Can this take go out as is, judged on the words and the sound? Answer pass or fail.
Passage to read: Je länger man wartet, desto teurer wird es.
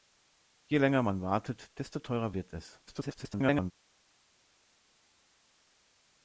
fail